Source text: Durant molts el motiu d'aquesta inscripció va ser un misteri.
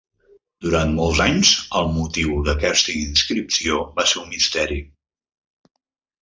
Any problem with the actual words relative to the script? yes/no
yes